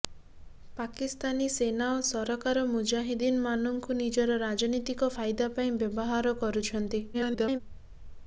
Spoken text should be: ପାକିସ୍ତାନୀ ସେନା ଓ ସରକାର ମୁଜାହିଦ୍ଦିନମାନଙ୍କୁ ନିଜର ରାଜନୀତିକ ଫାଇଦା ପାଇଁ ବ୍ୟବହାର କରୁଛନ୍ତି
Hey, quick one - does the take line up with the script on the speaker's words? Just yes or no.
no